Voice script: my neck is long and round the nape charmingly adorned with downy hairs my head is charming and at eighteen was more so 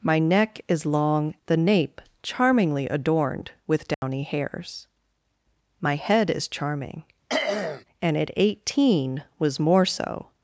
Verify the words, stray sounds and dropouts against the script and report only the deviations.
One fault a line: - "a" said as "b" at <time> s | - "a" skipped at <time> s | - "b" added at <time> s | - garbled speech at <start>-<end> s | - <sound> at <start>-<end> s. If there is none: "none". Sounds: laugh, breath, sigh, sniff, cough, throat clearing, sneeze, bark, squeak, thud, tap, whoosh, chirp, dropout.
- "and round" skipped at 1.4 s
- dropout at 3.9-4.0 s
- throat clearing at 7.3-7.8 s